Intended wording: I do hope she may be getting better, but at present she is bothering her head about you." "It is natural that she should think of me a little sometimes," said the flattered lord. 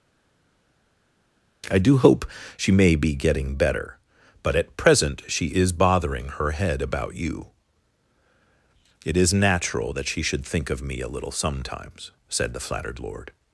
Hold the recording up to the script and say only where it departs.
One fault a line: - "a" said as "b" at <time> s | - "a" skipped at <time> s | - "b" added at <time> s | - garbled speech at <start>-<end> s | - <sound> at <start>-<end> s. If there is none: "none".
none